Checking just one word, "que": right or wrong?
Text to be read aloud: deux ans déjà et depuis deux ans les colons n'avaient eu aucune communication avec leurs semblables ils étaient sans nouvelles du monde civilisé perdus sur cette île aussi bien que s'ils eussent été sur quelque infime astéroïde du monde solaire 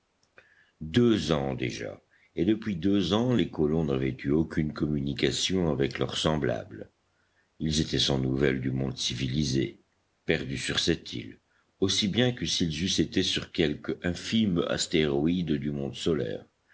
right